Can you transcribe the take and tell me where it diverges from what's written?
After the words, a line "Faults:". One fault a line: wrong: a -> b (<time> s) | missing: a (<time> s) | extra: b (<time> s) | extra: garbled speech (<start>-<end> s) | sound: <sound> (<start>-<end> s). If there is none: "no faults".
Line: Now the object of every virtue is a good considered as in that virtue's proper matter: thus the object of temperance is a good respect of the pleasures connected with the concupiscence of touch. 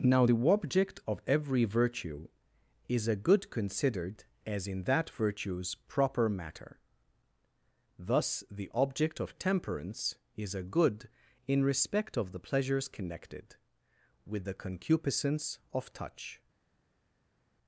Now the object of every virtue is a good considered as in that virtue's proper matter: thus the object of temperance is a good in respect of the pleasures connected with the concupiscence of touch.
Faults:
extra: in (11.5 s)